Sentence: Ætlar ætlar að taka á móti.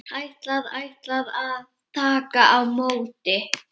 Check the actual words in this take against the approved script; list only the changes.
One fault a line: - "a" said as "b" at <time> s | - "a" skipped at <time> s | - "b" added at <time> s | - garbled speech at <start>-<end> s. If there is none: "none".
none